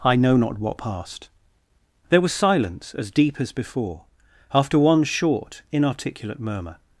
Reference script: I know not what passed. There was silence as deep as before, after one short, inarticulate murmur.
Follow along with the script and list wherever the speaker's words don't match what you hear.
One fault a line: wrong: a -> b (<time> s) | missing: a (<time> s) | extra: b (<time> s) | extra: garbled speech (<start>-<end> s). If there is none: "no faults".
no faults